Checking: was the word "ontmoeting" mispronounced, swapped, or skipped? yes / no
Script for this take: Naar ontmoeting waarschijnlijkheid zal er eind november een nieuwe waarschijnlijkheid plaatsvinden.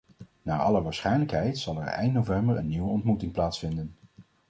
yes